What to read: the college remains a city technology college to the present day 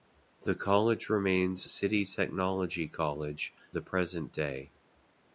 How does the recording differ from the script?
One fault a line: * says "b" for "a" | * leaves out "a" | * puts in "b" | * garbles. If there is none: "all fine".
* leaves out "a"
* leaves out "to"